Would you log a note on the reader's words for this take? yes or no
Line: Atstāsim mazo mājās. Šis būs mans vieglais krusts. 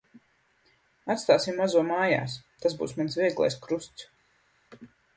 yes